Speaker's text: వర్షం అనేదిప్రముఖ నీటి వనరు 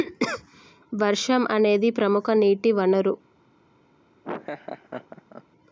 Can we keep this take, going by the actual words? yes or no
yes